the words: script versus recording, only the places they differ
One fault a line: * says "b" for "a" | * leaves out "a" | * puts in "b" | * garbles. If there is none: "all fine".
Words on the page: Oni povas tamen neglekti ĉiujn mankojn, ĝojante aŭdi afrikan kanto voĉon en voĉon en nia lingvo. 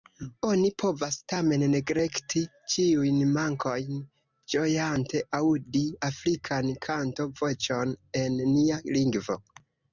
* leaves out "voĉon en"